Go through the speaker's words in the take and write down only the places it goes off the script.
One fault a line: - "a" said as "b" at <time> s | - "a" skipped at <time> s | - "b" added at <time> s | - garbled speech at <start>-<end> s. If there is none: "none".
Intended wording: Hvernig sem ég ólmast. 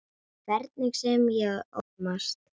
none